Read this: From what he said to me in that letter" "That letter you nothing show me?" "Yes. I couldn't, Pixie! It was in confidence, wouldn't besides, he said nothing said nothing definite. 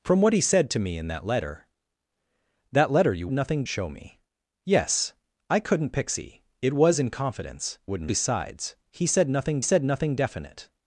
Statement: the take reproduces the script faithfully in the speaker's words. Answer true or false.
true